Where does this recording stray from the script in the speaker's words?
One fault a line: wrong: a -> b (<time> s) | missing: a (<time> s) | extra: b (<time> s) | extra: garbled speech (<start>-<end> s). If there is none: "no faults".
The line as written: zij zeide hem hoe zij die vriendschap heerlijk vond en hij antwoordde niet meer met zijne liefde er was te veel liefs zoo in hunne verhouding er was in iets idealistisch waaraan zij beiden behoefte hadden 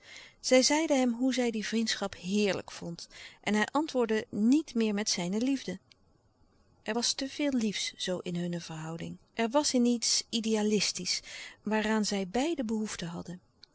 no faults